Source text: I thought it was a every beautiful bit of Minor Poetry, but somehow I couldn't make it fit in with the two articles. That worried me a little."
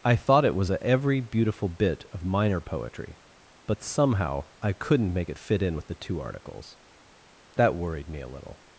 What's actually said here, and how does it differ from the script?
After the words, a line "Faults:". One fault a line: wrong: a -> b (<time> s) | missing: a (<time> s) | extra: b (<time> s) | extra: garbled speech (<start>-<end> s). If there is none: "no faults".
I thought it was a every beautiful bit of Minor Poetry, but somehow I couldn't make it fit in with the two articles. That worried me a little."
Faults:
no faults